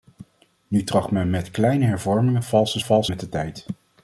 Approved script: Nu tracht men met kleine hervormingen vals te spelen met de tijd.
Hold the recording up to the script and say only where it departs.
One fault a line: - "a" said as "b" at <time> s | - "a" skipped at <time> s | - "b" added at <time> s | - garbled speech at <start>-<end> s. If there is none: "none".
- "spelen" said as "vals" at 2.8 s